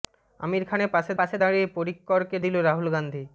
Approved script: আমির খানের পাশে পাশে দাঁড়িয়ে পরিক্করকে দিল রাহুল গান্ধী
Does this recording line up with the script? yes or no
yes